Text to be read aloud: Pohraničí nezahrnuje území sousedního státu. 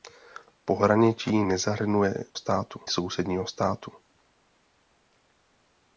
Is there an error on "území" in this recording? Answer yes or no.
yes